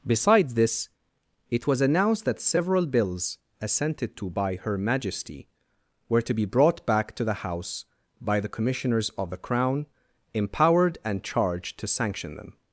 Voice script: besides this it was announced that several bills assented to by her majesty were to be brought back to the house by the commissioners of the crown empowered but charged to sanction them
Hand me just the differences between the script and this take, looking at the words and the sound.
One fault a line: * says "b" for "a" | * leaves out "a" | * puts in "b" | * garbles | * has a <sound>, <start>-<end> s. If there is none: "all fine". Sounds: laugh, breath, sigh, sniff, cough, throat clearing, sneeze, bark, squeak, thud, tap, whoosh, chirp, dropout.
* says "and" for "but"